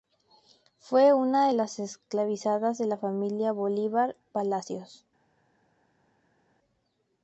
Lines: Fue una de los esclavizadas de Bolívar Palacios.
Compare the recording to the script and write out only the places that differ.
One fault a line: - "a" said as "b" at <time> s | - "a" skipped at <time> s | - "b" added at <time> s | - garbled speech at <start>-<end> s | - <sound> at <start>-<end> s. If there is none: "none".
- "los" said as "las" at 1.5 s
- "la familia" added at 2.9 s